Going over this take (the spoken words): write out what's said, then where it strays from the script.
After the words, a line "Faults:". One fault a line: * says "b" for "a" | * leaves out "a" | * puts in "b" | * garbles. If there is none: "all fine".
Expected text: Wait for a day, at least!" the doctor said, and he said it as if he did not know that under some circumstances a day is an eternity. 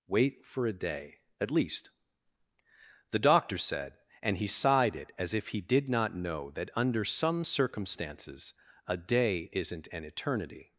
Wait for a day, at least!" the doctor said, and he sighed it as if he did not know that under some circumstances a day isn't an eternity.
Faults:
* says "sighed" for "said"
* says "isn't" for "is"